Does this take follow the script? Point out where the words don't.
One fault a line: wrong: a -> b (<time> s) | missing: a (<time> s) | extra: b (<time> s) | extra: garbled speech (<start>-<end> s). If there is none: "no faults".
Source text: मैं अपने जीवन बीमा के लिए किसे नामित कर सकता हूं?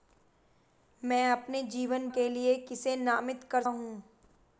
missing: बीमा (2.1 s)
missing: सकता (3.6 s)